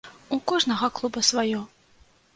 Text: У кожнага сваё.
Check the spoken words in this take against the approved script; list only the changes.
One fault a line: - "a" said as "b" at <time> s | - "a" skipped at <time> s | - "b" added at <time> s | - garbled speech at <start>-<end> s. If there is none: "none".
- "клуба" added at 1.0 s